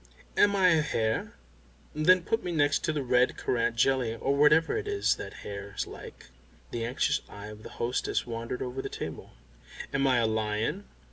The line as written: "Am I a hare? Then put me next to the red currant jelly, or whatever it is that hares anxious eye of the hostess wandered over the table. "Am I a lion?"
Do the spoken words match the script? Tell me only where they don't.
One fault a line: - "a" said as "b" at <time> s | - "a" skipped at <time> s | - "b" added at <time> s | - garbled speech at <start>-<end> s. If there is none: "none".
- "like The" added at 5.8 s